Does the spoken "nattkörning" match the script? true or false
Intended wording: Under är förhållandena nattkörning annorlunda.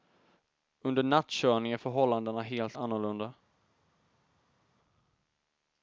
false